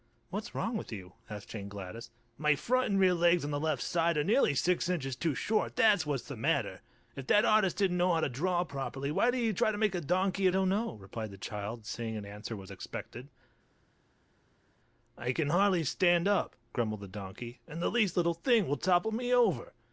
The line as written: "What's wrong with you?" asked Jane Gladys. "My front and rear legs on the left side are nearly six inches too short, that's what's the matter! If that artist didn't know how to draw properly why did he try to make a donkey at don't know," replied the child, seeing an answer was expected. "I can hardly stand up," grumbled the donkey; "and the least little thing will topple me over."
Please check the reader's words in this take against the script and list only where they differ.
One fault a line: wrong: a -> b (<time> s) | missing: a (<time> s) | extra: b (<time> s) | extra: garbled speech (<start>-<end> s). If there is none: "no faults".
no faults